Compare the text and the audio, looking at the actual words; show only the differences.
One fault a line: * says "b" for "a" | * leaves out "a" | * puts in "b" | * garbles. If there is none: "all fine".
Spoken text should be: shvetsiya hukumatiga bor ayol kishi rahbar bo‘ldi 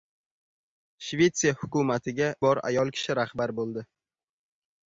all fine